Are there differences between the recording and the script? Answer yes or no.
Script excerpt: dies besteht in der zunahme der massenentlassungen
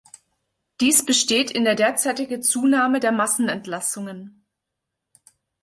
yes